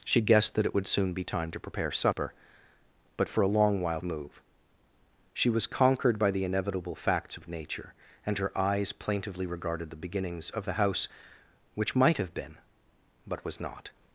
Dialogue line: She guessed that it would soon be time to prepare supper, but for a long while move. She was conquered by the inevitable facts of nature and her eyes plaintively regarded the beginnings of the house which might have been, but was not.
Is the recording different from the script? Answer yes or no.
no